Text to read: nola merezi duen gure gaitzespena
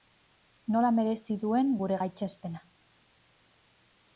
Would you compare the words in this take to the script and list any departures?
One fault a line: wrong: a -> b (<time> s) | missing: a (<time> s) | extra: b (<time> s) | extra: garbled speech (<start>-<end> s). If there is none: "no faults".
no faults